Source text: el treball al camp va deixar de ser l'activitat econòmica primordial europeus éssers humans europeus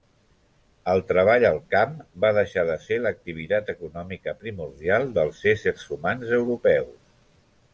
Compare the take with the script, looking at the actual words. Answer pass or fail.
fail